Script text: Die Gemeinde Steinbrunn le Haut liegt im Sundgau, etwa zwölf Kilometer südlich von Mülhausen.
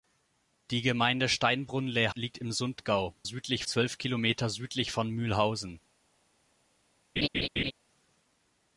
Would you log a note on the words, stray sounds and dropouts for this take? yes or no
yes